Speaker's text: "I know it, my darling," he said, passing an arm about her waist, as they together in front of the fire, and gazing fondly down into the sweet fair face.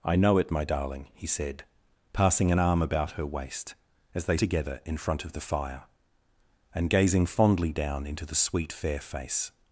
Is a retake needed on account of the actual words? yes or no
no